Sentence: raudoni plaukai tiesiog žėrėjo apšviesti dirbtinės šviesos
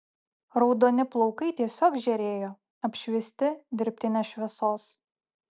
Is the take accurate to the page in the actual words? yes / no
yes